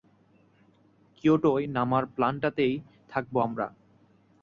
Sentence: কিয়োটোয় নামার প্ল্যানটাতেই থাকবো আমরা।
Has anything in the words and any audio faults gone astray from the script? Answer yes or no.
no